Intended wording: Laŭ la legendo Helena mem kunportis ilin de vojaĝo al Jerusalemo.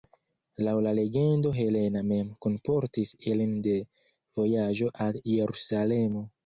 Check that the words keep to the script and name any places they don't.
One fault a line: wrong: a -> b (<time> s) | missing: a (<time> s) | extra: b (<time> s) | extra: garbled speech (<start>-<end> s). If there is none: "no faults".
no faults